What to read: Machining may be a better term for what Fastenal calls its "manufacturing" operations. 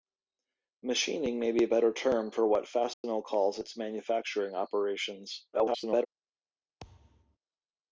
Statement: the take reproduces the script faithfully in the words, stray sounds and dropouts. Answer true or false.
false